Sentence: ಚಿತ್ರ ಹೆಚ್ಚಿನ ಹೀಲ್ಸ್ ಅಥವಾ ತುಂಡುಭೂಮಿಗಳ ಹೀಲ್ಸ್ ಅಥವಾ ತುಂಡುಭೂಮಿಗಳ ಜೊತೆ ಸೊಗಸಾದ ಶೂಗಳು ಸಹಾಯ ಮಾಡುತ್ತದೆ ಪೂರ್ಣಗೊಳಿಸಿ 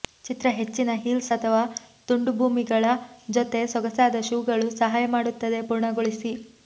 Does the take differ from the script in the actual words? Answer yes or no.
yes